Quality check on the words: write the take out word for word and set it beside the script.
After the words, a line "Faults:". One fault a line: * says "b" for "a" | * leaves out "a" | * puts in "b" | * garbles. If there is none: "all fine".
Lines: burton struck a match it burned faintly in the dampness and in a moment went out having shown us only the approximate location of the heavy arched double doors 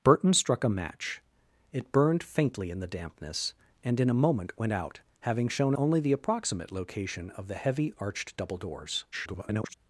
burton struck a match it burned faintly in the dampness and in a moment went out having shown only the approximate location of the heavy arched double doors [garbled]
Faults:
* leaves out "us"
* garbles